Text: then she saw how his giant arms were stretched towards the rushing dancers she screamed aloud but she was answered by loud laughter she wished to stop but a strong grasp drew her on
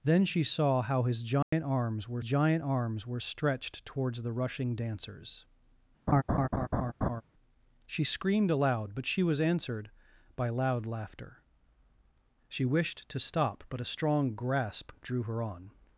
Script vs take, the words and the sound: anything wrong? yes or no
yes